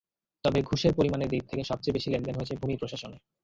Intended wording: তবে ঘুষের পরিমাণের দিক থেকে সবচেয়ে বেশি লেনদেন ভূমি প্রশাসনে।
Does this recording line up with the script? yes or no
no